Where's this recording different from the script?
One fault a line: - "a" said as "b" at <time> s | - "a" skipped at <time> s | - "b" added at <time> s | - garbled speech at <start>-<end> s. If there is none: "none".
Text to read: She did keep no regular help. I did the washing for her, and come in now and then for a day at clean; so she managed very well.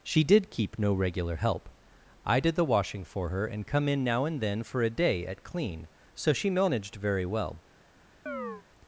none